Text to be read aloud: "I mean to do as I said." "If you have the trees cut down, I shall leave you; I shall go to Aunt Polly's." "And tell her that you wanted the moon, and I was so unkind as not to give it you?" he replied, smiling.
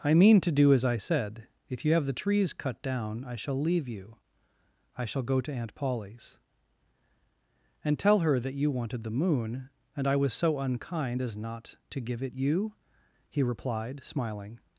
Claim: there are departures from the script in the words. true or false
false